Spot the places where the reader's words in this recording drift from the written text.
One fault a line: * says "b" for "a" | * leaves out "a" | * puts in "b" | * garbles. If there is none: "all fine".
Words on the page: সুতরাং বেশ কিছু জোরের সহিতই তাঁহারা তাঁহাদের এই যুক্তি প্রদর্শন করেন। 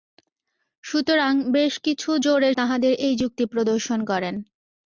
* leaves out "সহিতই তাঁহারা"